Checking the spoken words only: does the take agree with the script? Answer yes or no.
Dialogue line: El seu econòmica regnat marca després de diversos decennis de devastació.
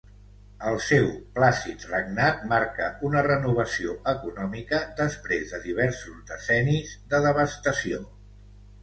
no